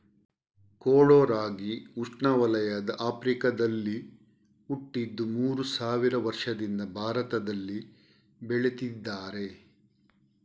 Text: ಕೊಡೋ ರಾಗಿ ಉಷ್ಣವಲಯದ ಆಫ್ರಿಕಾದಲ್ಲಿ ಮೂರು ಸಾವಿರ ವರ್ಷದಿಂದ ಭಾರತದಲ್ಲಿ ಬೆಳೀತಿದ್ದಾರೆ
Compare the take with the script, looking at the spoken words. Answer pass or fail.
fail